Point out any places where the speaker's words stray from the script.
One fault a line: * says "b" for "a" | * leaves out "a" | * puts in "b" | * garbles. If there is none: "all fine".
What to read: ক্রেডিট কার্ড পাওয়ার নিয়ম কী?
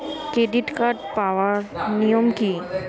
all fine